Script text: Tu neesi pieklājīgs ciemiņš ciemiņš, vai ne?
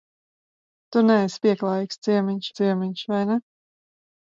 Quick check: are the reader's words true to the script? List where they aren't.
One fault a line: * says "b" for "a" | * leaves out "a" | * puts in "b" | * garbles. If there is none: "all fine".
all fine